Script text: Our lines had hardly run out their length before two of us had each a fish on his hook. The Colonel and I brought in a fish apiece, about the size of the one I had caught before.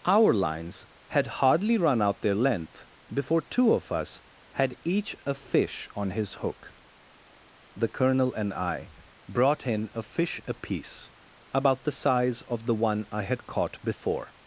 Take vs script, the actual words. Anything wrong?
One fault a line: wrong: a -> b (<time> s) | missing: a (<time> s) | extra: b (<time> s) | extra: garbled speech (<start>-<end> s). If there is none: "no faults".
no faults